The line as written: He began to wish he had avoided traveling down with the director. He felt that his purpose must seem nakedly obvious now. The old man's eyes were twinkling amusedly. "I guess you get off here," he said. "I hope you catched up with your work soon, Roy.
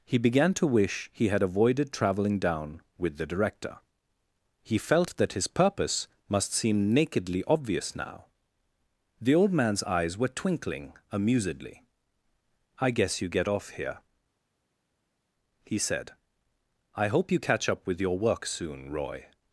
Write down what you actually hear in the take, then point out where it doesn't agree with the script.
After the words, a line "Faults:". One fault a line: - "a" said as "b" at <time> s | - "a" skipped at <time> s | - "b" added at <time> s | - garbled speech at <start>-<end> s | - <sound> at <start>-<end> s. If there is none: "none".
He began to wish he had avoided traveling down with the director. He felt that his purpose must seem nakedly obvious now. The old man's eyes were twinkling amusedly. "I guess you get off here," he said. "I hope you catch up with your work soon, Roy.
Faults:
- "catched" said as "catch" at 17.4 s